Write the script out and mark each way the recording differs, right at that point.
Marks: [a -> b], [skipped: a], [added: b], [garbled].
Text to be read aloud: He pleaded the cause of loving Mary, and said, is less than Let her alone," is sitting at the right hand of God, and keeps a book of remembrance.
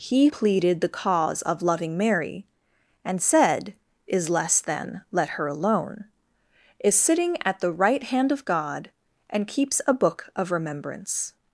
He pleaded the cause of loving Mary, and said, is less than Let her alone," is sitting at the right hand of God, and keeps a book of remembrance.